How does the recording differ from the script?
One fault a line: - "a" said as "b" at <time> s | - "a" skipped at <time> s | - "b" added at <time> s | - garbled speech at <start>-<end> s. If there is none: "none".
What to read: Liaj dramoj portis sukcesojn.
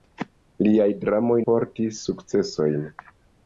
none